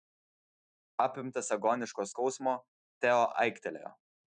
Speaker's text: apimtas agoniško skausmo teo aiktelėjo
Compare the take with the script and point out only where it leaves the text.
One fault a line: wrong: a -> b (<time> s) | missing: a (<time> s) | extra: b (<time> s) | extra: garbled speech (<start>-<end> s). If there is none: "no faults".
no faults